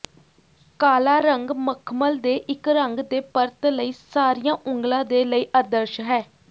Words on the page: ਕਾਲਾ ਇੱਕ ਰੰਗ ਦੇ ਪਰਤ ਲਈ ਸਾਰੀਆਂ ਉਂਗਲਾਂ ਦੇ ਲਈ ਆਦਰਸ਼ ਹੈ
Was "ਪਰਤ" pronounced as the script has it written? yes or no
yes